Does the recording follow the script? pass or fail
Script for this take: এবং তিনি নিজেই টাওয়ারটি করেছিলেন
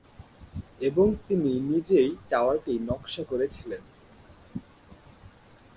fail